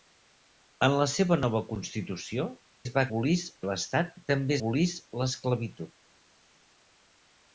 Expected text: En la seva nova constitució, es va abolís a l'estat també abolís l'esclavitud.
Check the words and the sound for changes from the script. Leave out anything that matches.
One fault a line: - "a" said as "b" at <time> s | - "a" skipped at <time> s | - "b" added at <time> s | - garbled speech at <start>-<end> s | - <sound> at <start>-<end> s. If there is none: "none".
none